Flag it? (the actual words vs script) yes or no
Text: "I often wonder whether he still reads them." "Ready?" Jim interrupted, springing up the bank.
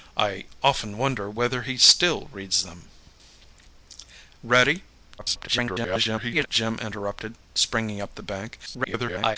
yes